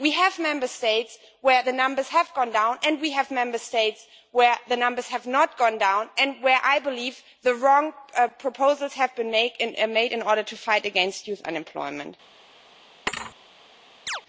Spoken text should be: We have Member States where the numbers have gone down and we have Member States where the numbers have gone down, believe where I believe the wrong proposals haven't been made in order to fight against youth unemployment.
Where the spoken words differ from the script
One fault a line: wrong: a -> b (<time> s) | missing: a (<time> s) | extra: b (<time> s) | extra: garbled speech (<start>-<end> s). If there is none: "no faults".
extra: not (5.3 s)
wrong: believe -> and (6.2 s)
wrong: haven't -> have (8.9 s)